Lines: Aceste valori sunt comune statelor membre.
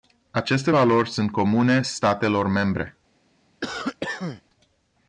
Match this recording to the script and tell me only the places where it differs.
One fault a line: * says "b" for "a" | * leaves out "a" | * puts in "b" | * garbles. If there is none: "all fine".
all fine